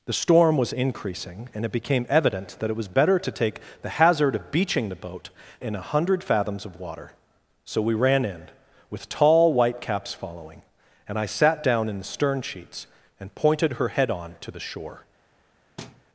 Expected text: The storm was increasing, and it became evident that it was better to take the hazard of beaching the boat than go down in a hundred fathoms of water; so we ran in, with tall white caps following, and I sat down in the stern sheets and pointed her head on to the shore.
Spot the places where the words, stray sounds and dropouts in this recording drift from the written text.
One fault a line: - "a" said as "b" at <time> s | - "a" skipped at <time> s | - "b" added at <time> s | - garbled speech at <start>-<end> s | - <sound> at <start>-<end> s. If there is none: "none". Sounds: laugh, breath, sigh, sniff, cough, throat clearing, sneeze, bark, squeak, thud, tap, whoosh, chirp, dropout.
- "than go down" skipped at 5.3 s
- thud at 15.8-16.0 s